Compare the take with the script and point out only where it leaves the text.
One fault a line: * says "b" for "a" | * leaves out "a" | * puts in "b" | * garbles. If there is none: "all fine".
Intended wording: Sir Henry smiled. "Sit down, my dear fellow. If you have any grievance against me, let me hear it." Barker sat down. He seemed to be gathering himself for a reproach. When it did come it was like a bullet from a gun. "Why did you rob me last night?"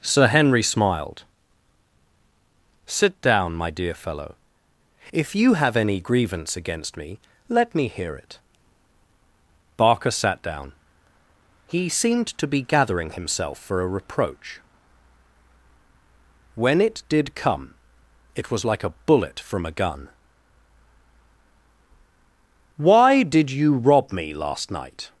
all fine